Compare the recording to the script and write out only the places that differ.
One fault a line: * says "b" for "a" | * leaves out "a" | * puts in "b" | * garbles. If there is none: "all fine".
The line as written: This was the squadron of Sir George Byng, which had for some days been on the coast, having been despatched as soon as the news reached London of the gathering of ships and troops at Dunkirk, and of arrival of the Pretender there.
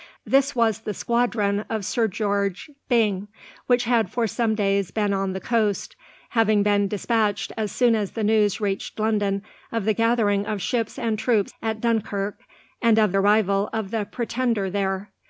all fine